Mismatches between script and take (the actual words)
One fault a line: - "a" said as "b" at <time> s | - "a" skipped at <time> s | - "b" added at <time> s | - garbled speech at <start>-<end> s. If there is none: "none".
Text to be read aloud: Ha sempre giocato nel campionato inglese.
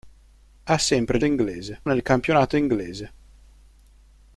- "giocato" said as "inglese" at 1.2 s